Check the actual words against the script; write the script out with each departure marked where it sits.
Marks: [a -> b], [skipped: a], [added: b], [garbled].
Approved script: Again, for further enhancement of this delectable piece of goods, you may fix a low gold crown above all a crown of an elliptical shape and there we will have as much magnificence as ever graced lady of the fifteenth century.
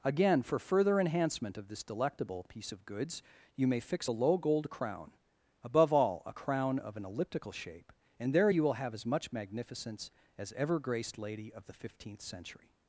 Again, for further enhancement of this delectable piece of goods, you may fix a low gold crown above all a crown of an elliptical shape and there [we -> you] will have as much magnificence as ever graced lady of the fifteenth century.